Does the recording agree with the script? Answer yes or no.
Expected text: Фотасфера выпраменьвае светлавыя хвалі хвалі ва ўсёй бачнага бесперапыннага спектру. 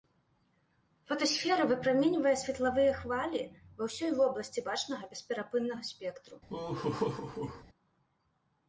no